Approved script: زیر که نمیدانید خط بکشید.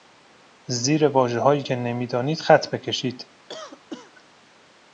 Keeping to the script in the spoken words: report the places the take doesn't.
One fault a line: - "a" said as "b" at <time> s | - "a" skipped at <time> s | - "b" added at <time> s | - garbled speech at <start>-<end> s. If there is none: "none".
- "واژههایی" added at 1.1 s